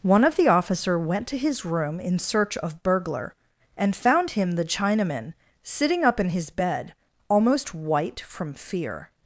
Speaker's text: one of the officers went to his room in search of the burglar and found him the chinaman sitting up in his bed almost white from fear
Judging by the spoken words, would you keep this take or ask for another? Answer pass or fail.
fail